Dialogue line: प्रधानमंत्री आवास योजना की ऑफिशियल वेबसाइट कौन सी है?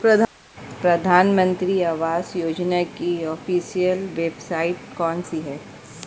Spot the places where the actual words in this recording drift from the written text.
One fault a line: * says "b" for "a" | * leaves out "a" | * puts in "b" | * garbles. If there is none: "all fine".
all fine